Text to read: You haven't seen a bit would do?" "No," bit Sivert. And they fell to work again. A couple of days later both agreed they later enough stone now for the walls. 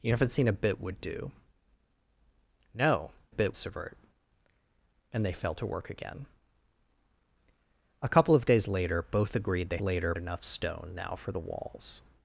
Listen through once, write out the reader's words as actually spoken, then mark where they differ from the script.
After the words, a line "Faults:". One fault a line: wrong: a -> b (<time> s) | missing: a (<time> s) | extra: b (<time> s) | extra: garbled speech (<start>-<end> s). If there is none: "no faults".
You haven't seen a bit would do?" "No," bit Sivert. And they fell to work again. A couple of days later both agreed they later enough stone now for the walls.
Faults:
no faults